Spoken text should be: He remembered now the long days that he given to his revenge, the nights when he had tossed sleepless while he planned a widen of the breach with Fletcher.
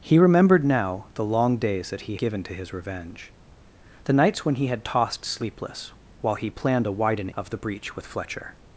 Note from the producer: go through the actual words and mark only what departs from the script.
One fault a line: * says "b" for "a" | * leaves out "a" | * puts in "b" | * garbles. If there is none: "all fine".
all fine